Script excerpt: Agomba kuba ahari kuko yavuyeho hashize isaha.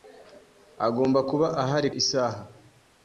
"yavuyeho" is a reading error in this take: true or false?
true